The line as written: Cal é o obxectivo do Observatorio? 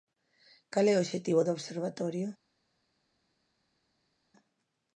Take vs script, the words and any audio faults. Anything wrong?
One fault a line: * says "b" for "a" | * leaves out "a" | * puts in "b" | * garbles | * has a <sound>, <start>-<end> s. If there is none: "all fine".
all fine